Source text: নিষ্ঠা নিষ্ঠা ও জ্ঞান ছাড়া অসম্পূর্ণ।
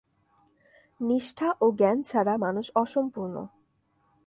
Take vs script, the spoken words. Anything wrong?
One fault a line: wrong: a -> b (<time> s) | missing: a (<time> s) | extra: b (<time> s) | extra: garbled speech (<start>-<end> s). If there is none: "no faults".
missing: নিষ্ঠা (1.5 s)
extra: মানুষ (2.4 s)